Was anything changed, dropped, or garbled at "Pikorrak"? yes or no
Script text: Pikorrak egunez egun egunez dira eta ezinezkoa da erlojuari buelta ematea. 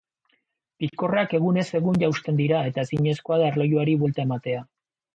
no